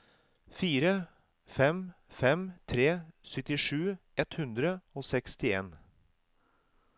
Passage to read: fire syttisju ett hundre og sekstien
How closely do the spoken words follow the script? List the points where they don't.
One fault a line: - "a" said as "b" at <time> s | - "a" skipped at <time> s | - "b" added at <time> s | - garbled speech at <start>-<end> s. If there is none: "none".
- "fem fem tre" added at 1.4 s